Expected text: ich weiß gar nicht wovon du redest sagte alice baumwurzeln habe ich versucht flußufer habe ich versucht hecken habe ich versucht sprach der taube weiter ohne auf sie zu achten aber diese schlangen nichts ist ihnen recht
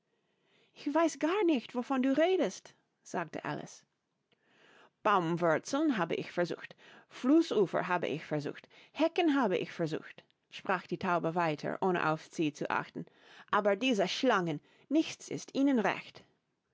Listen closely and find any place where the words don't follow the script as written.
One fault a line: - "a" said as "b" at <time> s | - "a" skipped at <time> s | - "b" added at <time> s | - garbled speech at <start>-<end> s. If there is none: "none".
- "der" said as "die" at 10.9 s